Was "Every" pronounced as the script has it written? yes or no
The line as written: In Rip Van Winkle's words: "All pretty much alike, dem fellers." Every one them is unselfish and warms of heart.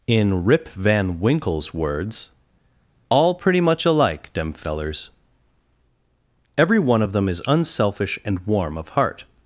yes